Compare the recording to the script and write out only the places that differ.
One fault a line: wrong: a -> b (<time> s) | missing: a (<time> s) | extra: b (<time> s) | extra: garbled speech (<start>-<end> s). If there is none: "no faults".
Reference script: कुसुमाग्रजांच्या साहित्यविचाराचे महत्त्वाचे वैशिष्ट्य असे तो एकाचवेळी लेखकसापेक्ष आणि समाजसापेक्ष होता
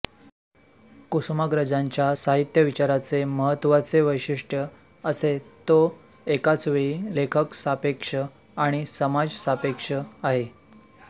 wrong: होता -> आहे (9.9 s)